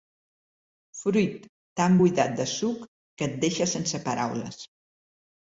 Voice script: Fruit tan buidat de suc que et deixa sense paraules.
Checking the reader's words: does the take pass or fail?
pass